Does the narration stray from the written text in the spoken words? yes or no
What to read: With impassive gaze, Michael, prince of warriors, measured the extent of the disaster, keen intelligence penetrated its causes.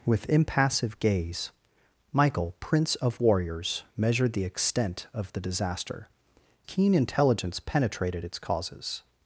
no